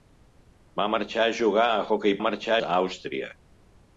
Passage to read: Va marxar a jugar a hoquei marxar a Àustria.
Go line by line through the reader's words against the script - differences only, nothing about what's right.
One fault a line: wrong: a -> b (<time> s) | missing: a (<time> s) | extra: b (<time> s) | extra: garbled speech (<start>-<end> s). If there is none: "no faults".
no faults